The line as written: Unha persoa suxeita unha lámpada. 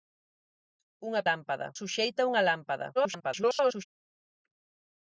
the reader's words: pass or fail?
fail